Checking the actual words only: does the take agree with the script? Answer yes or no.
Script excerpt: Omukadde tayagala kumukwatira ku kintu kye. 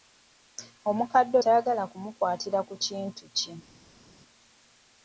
yes